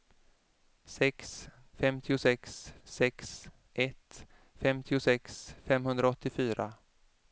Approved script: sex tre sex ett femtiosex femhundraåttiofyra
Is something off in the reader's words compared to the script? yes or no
yes